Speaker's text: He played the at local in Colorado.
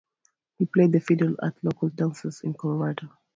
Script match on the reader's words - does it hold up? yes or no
no